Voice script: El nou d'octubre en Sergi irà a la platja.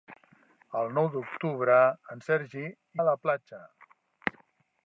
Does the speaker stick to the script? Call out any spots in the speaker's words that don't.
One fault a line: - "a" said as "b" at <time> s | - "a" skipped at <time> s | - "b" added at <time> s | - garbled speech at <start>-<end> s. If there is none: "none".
- "irà" skipped at 2.7 s